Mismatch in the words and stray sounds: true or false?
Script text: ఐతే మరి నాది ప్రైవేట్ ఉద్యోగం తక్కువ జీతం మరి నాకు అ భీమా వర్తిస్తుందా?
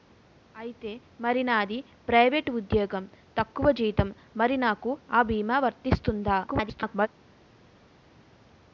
true